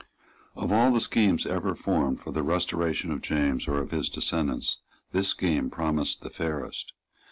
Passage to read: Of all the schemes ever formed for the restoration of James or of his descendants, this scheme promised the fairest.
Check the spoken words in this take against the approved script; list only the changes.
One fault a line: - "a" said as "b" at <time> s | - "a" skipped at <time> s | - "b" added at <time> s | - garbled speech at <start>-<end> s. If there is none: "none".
none